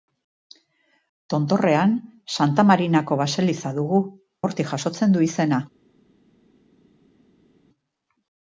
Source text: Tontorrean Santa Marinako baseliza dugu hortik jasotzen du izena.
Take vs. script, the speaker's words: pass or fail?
pass